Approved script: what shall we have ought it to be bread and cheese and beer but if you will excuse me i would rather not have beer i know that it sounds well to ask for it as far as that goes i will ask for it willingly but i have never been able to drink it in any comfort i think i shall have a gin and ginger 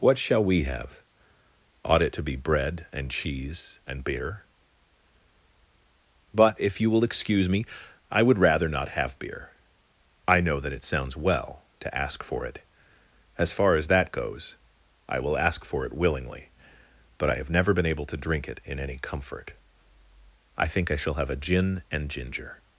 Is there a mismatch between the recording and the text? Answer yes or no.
no